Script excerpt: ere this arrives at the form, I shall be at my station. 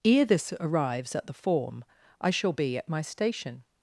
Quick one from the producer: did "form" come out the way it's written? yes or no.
yes